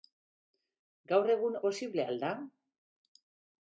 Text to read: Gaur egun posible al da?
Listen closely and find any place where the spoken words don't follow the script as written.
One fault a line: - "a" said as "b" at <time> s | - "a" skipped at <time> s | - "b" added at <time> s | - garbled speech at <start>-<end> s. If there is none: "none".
none